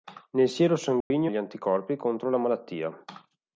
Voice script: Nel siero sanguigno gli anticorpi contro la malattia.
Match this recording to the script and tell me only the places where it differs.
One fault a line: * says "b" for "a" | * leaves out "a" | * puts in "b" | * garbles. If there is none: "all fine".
all fine